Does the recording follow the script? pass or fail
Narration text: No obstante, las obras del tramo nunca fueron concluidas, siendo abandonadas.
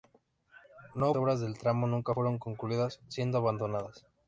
fail